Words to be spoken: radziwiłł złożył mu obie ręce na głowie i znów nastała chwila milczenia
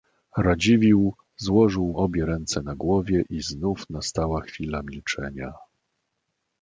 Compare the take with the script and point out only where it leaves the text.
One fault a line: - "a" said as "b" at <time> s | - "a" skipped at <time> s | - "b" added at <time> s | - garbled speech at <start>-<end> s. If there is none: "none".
- "mu" skipped at 1.9 s